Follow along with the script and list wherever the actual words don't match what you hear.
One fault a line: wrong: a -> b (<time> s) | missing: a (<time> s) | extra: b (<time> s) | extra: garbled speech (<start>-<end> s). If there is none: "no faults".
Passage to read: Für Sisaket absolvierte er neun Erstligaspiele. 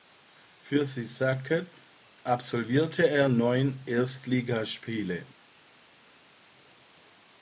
no faults